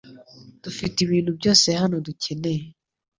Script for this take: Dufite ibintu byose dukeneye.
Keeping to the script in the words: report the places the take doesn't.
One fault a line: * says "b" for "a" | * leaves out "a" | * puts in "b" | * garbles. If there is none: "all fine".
* puts in "hano"